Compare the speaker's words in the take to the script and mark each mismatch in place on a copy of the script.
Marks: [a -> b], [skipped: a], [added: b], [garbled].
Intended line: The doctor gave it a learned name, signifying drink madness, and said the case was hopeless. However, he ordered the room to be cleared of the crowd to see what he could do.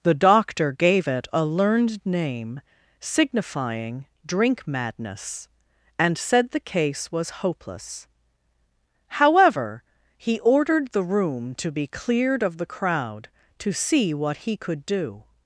The doctor gave it a learned name, signifying drink madness, and said the case was hopeless. However, he ordered the room to be cleared of the crowd to see what he could do.